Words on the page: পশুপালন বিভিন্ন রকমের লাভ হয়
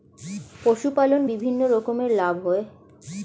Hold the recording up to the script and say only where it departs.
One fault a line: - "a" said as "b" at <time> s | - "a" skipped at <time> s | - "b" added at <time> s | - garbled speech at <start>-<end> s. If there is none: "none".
none